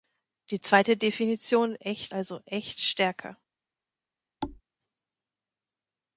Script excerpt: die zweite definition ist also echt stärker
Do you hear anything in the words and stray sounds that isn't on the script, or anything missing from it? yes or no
yes